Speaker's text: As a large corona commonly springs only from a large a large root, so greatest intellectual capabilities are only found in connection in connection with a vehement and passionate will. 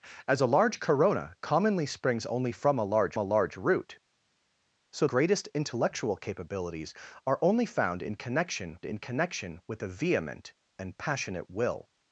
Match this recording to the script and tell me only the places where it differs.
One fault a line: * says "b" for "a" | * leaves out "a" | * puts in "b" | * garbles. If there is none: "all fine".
all fine